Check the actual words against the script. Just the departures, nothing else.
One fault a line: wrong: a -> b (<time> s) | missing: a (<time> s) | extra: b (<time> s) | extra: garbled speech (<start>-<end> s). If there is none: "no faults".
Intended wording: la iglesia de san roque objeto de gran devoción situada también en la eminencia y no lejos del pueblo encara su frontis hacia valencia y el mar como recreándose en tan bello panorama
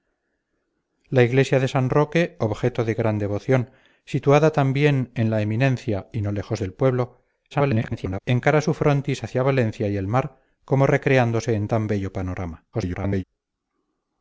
extra: garbled speech (7.5-8.2 s)
extra: garbled speech (12.7-13.2 s)